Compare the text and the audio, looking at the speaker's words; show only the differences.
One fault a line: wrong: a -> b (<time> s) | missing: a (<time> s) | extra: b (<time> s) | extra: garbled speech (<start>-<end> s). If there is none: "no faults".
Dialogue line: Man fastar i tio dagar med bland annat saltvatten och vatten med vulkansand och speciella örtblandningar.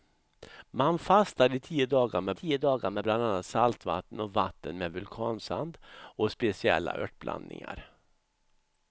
extra: tio dagar med (2.3 s)